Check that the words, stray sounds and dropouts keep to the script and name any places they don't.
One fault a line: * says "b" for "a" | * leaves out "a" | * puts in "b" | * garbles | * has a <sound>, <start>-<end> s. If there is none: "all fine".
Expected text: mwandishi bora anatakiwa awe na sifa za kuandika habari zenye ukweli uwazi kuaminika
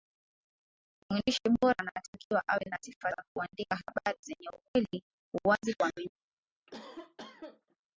* has a cough, 6.7-7.8 s